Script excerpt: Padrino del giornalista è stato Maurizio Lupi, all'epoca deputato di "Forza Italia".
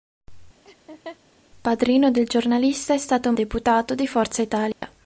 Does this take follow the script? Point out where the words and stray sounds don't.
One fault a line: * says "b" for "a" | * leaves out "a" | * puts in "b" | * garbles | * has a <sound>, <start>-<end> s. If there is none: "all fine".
* has a laugh, 0.6-1.2 s
* leaves out "Maurizio Lupi all'epoca"
* has a dropout, 4.7-4.8 s